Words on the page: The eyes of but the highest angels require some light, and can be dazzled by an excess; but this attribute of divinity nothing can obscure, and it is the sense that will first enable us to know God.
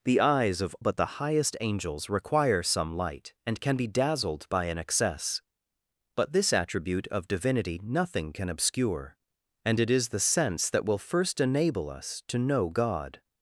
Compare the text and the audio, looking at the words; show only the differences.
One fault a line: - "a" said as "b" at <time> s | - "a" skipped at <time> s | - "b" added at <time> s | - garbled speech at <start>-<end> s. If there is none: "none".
none